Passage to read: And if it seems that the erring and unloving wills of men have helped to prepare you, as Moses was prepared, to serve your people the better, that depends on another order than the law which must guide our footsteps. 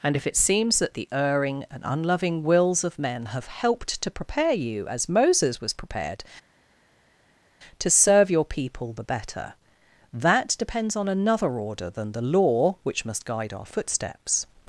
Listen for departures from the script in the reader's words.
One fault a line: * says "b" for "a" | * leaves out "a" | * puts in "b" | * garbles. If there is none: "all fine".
all fine